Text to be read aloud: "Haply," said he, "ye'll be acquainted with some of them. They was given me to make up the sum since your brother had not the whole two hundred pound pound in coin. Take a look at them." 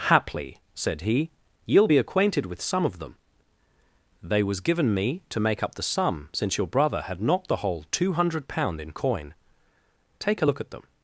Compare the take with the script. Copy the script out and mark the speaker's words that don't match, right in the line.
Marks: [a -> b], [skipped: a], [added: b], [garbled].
"Haply," said he, "ye'll be acquainted with some of them. They was given me to make up the sum since your brother had not the whole two hundred pound [skipped: pound] in coin. Take a look at them."